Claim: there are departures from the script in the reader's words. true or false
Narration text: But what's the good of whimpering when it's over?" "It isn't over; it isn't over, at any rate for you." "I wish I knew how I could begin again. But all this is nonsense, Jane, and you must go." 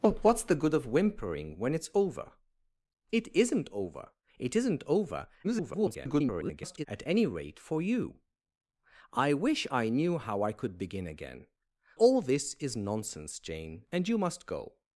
true